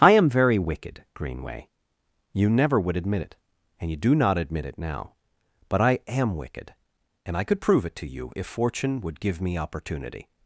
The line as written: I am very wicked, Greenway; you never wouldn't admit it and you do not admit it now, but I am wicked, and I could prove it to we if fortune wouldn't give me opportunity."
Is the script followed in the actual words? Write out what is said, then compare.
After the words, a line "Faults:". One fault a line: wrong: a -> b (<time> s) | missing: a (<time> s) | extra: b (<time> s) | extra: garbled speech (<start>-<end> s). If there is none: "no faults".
I am very wicked, Greenway; you never would admit it and you do not admit it now, but I am wicked, and I could prove it to you if fortune would give me opportunity."
Faults:
wrong: wouldn't -> would (2.8 s)
wrong: we -> you (8.1 s)
wrong: wouldn't -> would (9.0 s)